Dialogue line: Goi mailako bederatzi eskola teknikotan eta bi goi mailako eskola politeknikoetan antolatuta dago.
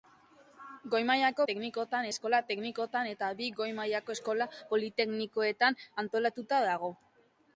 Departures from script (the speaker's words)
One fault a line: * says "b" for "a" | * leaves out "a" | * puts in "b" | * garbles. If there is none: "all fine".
* says "teknikotan" for "bederatzi"